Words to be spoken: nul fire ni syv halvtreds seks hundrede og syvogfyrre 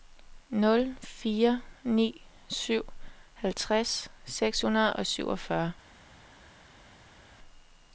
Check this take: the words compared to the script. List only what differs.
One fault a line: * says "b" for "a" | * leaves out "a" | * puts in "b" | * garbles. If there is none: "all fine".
all fine